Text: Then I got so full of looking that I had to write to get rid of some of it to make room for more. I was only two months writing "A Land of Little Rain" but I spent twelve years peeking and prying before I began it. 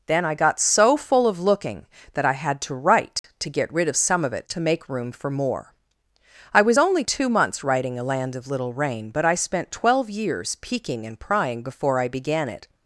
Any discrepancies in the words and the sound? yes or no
yes